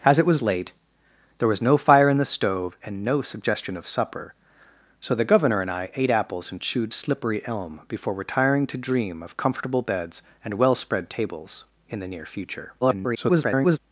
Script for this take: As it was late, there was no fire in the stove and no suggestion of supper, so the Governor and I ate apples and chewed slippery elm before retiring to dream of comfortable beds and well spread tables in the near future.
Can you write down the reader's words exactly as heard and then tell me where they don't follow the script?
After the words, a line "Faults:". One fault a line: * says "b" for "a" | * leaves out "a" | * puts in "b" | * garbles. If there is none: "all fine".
As it was late, there was no fire in the stove and no suggestion of supper, so the Governor and I ate apples and chewed slippery elm before retiring to dream of comfortable beds and well spread tables in the near future. [garbled]
Faults:
* garbles